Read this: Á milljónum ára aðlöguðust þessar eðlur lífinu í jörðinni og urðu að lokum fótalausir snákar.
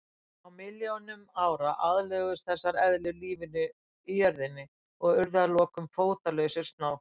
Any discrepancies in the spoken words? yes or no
no